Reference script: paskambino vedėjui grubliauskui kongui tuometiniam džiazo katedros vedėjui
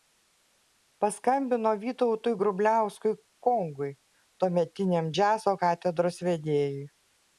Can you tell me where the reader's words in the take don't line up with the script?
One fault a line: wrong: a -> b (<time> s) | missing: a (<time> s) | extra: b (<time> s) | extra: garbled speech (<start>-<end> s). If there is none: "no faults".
wrong: vedėjui -> vytautui (1.8 s)